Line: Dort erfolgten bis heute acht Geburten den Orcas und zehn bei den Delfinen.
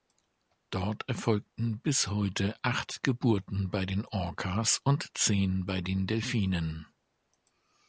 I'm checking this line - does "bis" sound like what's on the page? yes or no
yes